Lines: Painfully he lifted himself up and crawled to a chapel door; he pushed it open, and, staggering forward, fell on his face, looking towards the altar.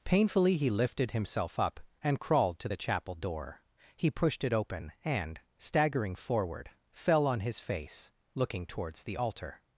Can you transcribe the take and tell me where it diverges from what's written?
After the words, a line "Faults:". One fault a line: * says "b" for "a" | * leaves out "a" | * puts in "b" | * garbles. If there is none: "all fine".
Painfully he lifted himself up and crawled to the chapel door; he pushed it open, and, staggering forward, fell on his face, looking towards the altar.
Faults:
* says "the" for "a"